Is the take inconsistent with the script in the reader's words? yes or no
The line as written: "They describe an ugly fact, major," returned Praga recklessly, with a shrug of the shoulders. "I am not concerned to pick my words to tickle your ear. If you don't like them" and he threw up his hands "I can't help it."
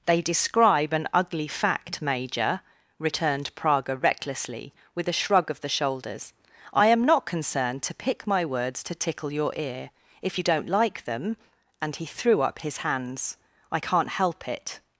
no